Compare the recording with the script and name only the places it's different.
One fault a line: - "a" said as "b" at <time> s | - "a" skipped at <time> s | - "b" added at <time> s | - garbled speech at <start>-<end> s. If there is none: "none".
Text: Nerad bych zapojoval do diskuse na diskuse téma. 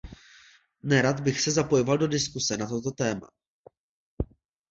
- "se" added at 1.4 s
- "diskuse" said as "toto" at 2.7 s